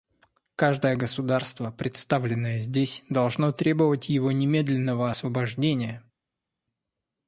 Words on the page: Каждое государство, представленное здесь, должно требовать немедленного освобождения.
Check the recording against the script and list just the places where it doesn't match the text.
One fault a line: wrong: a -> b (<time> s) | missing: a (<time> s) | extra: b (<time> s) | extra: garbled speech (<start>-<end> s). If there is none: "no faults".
extra: его (4.1 s)